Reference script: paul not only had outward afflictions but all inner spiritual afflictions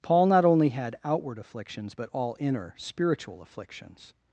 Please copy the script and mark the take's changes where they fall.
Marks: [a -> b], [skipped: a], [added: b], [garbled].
paul not only had outward afflictions but all inner spiritual afflictions